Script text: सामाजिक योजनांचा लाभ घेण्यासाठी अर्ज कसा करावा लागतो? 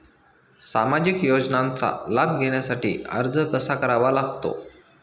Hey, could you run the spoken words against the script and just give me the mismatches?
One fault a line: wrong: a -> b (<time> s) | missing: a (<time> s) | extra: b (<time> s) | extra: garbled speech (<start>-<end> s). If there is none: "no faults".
no faults